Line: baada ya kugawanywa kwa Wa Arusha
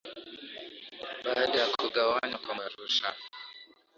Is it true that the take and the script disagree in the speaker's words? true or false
false